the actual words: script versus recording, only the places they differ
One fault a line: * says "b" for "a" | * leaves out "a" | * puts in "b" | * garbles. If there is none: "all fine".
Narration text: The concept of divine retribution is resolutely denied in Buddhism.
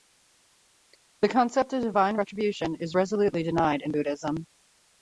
all fine